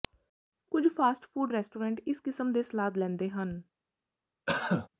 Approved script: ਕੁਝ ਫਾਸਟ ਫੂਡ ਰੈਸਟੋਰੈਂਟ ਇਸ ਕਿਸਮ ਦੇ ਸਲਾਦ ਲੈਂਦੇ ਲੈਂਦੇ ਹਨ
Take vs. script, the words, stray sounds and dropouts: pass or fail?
fail